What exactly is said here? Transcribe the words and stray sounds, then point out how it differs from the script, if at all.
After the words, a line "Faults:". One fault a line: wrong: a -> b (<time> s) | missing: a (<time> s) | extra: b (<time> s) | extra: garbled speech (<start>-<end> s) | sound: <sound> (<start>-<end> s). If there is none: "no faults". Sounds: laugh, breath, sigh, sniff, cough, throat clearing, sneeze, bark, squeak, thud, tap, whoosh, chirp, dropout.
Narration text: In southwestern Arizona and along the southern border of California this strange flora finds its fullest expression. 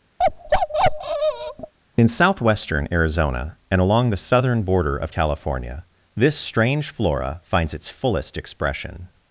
In southwestern Arizona and along the southern border of California this strange flora finds its fullest expression.
Faults:
sound: bark (0.2-1.7 s)